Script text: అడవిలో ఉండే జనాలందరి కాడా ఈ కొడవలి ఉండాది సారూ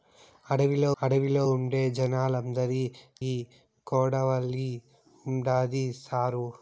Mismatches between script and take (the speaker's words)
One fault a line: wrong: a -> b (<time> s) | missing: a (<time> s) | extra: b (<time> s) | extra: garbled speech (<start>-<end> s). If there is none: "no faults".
extra: అడవిలో (1.0 s)
missing: కాడా (2.8 s)